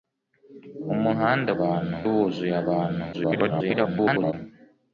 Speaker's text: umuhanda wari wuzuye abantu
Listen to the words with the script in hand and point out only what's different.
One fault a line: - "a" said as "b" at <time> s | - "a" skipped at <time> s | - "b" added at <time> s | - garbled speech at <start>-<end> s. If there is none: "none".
- "wari" said as "abantu" at 1.6 s
- garbled speech at 3.1-4.3 s